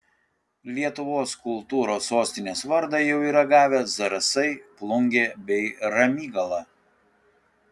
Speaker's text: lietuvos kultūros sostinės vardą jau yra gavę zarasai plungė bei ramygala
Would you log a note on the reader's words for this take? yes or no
no